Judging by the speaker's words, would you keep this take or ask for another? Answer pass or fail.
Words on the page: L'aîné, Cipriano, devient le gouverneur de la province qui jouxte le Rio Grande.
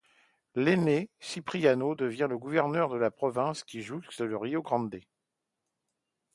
pass